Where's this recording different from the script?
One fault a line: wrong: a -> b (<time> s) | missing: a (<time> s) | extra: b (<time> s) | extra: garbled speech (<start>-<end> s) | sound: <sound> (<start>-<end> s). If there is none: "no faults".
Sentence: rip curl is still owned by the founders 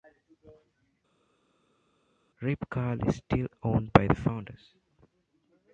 no faults